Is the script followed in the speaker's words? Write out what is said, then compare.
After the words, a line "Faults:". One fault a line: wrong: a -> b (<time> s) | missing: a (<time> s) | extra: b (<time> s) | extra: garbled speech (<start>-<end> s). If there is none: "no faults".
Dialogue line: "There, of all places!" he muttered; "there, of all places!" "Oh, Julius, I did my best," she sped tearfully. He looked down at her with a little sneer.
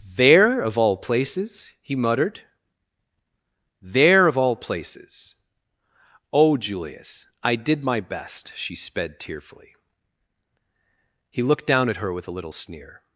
"There, of all places!" he muttered; "there, of all places!" "Oh, Julius, I did my best," she sped tearfully. He looked down at her with a little sneer.
Faults:
no faults